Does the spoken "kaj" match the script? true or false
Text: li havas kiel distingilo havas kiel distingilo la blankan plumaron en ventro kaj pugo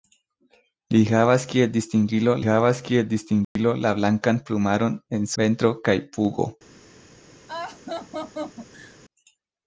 true